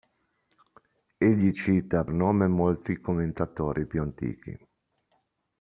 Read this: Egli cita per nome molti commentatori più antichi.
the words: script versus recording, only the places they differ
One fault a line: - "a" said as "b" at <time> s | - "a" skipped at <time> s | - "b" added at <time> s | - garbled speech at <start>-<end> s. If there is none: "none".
- "per" skipped at 2.0 s